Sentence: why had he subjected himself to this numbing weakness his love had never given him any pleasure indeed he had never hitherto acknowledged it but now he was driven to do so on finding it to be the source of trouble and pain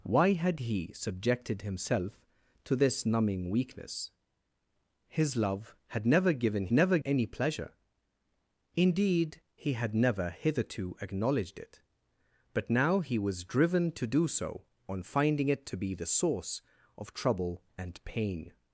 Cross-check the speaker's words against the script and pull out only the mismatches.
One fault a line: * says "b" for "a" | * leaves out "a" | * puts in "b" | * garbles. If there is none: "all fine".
* says "never" for "him"